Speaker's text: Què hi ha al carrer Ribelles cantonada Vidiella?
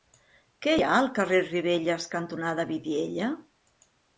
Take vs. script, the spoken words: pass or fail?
pass